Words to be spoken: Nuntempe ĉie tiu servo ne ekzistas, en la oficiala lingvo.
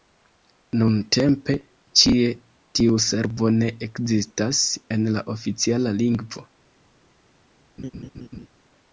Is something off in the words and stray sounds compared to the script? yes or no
yes